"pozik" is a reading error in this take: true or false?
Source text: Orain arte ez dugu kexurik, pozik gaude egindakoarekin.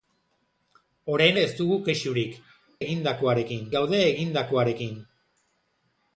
true